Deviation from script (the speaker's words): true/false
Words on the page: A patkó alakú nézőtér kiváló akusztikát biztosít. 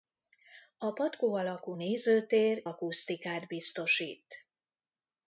true